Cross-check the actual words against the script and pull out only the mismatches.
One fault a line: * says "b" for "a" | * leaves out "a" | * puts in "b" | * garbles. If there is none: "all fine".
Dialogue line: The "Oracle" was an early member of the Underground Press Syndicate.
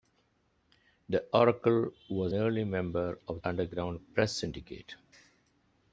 * leaves out "an"
* leaves out "the"